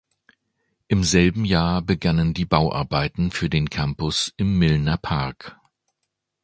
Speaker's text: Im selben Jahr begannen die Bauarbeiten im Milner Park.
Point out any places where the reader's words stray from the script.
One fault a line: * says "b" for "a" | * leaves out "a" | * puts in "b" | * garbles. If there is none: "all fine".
* puts in "für den Campus"